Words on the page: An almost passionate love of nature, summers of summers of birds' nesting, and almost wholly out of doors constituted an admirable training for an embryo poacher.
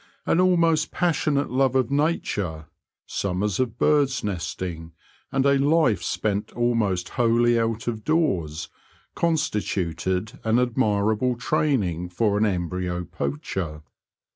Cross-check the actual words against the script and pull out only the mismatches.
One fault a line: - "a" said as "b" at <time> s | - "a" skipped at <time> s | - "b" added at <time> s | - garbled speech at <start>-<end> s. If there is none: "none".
- "summers of" skipped at 3.8 s
- "a life spent" added at 5.5 s